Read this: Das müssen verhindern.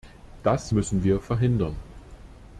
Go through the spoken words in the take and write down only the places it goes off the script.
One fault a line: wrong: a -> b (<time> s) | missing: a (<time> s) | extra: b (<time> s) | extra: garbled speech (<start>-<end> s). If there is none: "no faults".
extra: wir (1.0 s)